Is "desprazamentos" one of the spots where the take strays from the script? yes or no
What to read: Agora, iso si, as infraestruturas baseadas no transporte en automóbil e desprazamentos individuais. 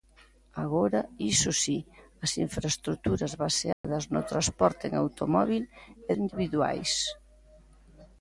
yes